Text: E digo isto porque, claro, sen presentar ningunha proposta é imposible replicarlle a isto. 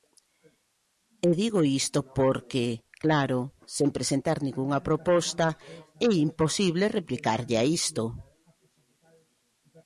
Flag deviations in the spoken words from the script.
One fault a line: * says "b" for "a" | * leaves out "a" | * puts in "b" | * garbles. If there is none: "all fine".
all fine